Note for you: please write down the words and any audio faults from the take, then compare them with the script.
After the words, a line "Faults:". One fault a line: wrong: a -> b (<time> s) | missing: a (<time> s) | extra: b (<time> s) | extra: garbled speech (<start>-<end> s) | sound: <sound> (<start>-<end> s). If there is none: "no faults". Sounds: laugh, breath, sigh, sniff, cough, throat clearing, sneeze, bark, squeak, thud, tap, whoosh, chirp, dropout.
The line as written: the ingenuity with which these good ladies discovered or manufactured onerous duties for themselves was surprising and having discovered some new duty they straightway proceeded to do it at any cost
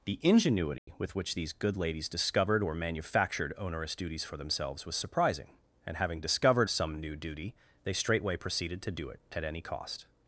the ingenuity with which these good ladies discovered or manufactured onerous duties for themselves was surprising and having discovered some new duty they straightway proceeded to do it at any cost
Faults:
sound: dropout (0.8-0.9 s)